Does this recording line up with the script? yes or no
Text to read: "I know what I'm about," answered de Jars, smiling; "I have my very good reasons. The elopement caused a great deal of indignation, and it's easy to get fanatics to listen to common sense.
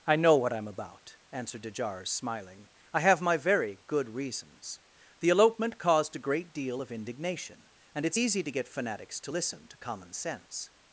yes